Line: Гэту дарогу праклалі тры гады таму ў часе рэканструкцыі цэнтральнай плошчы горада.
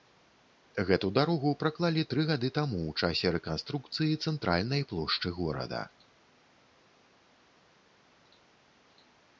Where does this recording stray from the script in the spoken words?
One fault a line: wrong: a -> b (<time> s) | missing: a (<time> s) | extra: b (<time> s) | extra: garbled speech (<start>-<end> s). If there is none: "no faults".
no faults